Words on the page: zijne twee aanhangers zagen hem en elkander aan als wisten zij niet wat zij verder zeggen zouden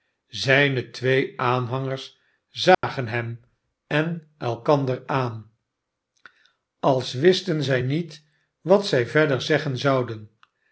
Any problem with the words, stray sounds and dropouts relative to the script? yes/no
yes